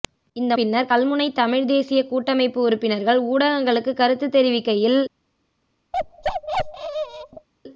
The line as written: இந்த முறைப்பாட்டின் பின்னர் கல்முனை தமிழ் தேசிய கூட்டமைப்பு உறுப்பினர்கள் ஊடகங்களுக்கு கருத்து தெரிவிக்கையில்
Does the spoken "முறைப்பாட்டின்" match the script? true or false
false